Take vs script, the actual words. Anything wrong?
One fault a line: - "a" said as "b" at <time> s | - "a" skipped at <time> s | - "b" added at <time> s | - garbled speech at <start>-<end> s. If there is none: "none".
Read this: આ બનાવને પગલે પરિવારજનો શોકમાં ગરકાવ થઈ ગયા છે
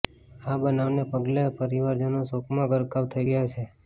none